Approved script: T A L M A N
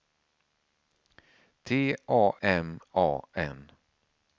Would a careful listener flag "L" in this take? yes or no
yes